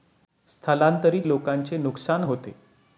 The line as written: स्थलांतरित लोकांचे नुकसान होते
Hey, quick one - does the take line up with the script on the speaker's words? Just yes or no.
yes